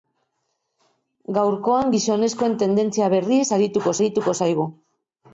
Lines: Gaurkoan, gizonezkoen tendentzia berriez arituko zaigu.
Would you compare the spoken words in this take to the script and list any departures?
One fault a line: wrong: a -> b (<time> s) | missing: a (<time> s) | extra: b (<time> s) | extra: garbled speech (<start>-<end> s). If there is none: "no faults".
extra: arituko (4.0 s)